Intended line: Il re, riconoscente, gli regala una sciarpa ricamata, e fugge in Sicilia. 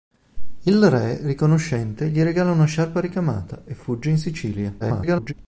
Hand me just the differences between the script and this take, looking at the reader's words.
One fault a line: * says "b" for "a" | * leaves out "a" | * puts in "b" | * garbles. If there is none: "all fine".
* garbles